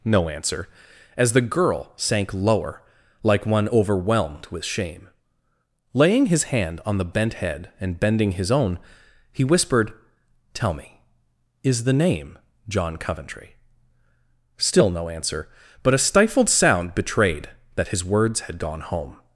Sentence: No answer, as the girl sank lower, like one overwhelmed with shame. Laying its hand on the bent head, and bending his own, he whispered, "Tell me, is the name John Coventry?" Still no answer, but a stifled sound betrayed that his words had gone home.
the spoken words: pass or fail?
fail